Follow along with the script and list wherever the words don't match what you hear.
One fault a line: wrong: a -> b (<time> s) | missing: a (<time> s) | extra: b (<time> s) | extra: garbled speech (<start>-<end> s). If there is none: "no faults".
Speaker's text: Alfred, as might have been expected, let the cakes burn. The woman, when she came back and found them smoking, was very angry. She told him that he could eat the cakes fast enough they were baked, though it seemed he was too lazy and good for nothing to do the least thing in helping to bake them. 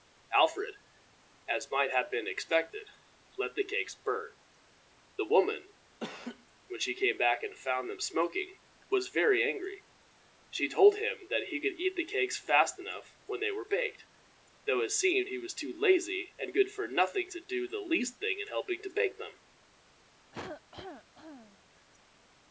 extra: when (13.3 s)